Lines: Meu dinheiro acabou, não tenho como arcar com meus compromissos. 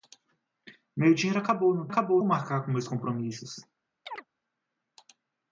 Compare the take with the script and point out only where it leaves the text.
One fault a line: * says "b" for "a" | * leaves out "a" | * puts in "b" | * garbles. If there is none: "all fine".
* says "acabou" for "tenho"